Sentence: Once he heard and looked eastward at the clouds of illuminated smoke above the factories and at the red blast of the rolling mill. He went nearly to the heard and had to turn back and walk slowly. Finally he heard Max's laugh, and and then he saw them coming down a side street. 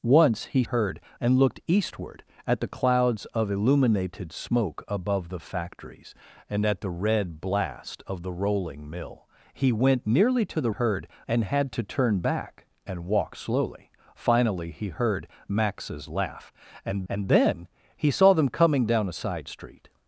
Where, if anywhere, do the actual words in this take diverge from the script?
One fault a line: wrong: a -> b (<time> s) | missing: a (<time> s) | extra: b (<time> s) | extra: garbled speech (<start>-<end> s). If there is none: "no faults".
no faults